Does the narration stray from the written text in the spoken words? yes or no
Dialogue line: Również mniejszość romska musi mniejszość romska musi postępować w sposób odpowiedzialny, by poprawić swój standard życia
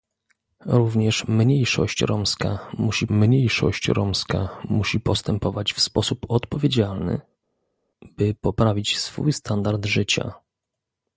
no